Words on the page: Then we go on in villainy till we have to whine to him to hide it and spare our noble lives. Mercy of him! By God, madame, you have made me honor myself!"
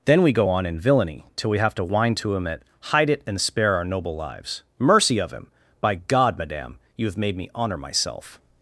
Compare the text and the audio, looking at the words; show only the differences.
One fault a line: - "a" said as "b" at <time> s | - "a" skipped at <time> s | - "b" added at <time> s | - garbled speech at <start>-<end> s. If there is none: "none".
- "to" said as "at" at 2.5 s